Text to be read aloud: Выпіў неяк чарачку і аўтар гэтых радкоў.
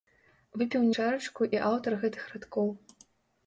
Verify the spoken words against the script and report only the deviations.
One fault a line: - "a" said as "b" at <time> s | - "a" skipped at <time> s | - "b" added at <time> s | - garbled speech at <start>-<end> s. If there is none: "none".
- "неяк" skipped at 0.9 s